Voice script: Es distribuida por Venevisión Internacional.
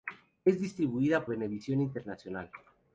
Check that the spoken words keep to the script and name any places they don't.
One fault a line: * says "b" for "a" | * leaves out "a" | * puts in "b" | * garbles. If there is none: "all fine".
* leaves out "por"